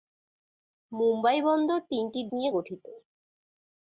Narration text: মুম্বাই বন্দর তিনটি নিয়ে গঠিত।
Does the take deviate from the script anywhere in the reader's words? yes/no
no